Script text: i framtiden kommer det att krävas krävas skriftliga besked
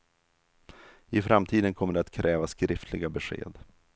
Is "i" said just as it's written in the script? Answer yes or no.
yes